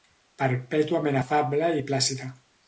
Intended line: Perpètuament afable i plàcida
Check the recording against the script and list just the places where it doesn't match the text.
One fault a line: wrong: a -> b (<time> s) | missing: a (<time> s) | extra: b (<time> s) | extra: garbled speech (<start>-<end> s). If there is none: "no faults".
no faults